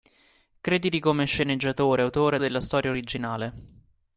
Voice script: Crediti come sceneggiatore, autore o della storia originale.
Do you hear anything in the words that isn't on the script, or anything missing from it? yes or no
no